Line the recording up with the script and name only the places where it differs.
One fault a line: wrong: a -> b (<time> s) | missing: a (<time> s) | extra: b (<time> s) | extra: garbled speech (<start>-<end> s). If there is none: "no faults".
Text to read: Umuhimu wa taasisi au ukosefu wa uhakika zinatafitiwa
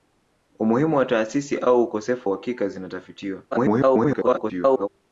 missing: wa (2.3 s)
extra: garbled speech (3.5-4.9 s)